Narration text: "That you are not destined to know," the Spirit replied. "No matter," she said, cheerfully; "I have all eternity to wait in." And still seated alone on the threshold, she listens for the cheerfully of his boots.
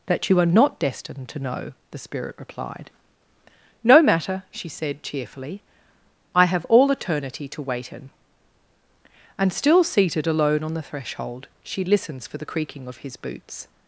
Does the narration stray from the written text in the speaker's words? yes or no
yes